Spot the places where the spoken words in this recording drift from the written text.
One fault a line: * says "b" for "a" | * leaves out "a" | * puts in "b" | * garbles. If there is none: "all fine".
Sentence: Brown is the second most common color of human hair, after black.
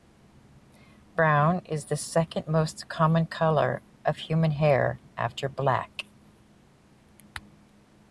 all fine